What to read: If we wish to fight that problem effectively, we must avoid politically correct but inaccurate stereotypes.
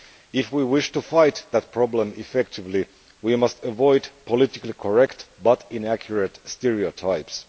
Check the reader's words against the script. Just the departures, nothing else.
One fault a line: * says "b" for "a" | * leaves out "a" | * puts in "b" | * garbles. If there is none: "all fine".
all fine